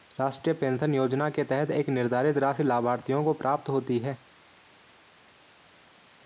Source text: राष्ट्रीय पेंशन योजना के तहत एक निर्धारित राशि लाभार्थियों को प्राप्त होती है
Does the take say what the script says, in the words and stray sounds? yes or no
yes